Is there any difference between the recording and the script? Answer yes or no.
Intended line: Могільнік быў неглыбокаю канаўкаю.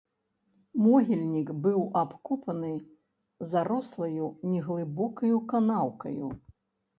yes